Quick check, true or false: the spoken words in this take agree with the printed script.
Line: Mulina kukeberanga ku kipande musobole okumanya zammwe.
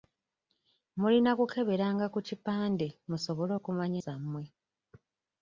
true